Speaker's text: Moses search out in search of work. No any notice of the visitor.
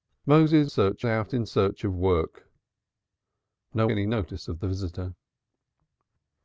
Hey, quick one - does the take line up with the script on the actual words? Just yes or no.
yes